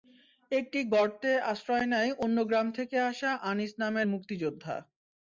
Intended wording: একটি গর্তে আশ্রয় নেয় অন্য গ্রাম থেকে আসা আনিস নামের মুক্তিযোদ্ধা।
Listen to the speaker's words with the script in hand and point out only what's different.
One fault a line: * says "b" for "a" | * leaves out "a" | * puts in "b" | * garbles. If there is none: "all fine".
all fine